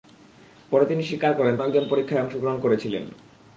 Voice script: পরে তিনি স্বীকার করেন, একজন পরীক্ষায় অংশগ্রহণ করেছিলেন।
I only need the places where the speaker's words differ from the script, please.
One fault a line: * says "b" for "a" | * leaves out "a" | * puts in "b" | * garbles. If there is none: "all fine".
all fine